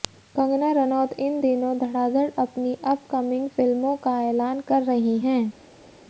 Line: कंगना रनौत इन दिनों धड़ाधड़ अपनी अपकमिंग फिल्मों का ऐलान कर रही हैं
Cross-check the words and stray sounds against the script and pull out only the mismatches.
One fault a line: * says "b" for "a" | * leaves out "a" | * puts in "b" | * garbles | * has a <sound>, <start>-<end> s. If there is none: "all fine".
all fine